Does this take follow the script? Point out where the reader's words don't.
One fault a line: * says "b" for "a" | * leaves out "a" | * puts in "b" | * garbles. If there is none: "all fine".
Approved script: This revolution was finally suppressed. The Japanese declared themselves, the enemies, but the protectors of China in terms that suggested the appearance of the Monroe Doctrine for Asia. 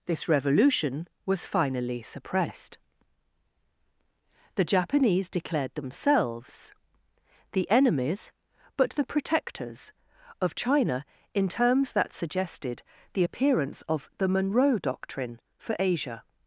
all fine